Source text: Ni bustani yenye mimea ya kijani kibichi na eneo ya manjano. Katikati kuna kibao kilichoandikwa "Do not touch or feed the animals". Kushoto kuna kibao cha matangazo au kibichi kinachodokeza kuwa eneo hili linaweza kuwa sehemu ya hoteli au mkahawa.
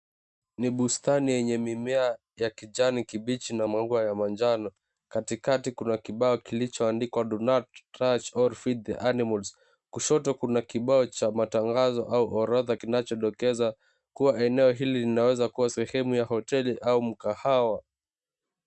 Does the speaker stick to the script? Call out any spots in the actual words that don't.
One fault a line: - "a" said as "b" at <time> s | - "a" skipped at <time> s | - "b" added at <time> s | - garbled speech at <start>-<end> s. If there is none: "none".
- "eneo" said as "maua" at 3.7 s
- "kibichi" said as "orodha" at 12.4 s